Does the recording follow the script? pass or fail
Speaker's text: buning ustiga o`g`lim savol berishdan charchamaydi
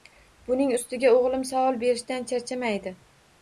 pass